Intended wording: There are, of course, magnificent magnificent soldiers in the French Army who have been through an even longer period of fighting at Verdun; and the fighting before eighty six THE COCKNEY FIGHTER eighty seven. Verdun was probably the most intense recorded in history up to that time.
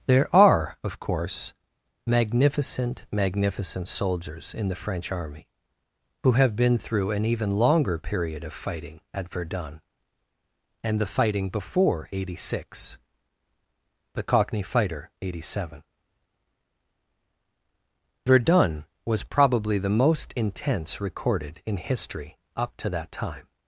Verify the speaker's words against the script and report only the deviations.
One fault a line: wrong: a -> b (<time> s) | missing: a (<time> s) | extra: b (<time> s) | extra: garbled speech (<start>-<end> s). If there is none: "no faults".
no faults